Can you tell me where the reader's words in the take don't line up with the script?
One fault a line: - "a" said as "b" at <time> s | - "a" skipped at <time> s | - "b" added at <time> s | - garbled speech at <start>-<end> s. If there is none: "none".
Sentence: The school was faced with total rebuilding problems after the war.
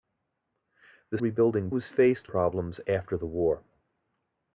- "school" said as "rebuilding" at 1.2 s
- "with total rebuilding" skipped at 2.3 s